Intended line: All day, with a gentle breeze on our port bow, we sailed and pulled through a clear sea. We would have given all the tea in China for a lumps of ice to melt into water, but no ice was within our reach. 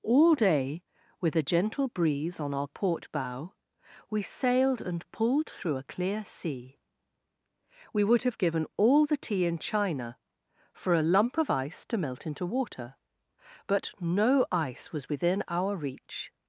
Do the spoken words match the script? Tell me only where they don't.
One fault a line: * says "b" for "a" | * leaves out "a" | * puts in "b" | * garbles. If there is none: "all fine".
* says "lump" for "lumps"